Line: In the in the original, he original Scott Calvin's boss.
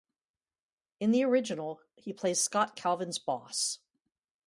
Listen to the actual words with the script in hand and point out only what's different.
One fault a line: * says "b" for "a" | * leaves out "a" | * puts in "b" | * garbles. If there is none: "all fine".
* leaves out "in the"
* says "plays" for "original"